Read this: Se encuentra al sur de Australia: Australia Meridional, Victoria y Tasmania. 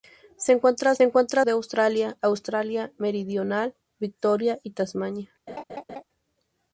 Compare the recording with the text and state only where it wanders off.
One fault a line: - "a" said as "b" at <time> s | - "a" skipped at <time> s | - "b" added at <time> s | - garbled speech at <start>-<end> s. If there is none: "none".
- "sur" said as "encuentra" at 1.0 s